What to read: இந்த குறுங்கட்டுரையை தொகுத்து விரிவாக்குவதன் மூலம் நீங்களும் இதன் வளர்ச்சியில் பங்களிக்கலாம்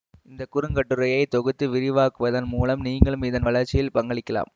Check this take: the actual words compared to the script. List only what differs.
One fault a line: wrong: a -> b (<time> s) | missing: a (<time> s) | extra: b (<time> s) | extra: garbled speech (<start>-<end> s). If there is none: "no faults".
no faults